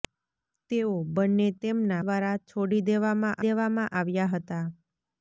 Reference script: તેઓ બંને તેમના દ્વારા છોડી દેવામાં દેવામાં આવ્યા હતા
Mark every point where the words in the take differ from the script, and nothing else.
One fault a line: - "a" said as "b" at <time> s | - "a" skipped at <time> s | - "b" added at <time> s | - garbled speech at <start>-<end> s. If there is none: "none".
none